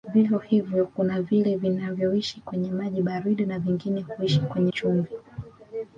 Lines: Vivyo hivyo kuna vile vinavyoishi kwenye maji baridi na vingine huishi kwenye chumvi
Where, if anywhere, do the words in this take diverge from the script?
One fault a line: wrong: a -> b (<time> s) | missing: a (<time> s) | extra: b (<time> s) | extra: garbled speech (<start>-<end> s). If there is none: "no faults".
no faults